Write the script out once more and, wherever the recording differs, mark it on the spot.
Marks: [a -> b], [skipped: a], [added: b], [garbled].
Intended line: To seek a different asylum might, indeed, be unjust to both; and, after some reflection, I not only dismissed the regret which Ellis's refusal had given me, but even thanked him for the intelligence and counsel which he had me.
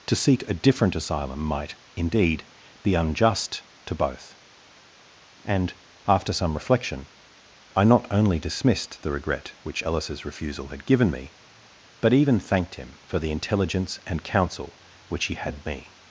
To seek a different asylum might, indeed, be unjust to both; and, after some reflection, I not only dismissed the regret which Ellis's refusal had given me, but even thanked him for the intelligence and counsel which he had me.